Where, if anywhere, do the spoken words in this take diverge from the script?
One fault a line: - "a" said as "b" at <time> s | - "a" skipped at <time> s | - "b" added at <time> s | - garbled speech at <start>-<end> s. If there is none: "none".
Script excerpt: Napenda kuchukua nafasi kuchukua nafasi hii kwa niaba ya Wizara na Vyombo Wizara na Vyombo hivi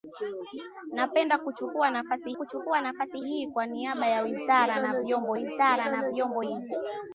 none